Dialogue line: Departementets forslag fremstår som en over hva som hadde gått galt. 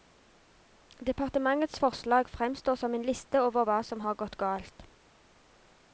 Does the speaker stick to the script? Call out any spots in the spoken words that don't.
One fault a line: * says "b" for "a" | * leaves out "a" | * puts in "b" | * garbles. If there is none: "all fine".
* puts in "liste"
* says "har" for "hadde"